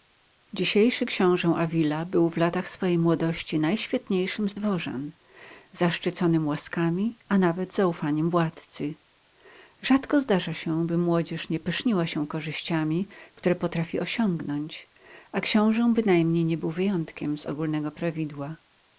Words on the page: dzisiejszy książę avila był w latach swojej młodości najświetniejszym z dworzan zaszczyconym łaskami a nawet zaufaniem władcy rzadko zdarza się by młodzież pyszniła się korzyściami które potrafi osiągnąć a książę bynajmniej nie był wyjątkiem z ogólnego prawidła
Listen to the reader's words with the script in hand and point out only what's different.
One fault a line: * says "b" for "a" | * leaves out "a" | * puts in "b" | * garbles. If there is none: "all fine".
* puts in "nie"